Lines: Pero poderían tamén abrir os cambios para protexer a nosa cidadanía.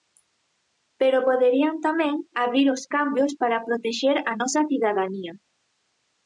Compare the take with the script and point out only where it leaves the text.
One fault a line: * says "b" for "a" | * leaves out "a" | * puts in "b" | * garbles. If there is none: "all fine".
all fine